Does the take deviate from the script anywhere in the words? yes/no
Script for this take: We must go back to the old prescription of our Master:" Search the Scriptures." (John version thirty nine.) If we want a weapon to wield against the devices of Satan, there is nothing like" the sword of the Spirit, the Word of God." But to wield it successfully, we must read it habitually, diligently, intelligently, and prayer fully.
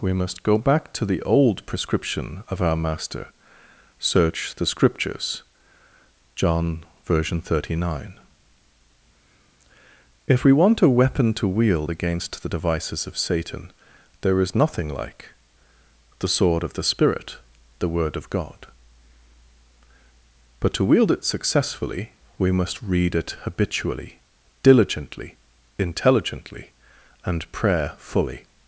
no